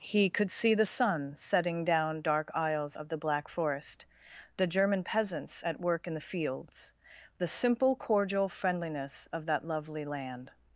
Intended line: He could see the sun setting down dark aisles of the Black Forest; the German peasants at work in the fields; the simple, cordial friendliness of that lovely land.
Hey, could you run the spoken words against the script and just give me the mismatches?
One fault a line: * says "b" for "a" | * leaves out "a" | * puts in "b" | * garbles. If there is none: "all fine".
all fine